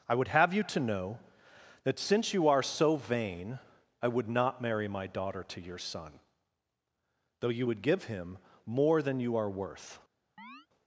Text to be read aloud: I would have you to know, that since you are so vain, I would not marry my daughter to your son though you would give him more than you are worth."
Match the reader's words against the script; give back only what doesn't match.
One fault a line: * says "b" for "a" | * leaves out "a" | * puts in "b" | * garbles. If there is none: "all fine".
all fine